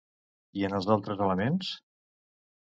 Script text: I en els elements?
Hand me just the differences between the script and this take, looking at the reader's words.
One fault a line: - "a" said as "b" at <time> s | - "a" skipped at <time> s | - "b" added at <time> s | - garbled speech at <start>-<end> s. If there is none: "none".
- "altres" added at 0.9 s